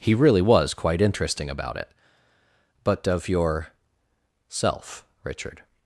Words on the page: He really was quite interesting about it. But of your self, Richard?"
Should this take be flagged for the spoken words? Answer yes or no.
no